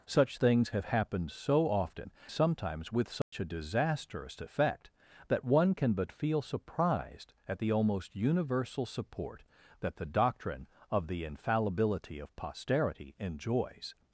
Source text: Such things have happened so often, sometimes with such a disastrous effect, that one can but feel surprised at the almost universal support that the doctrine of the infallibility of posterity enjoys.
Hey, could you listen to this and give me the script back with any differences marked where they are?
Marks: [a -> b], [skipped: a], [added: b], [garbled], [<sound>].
Such things have happened so often, sometimes with such [dropout] a disastrous effect, that one can but feel surprised at the almost universal support that the doctrine of the infallibility of posterity enjoys.